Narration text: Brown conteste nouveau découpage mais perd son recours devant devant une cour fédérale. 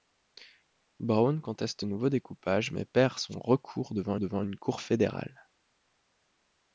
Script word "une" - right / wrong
right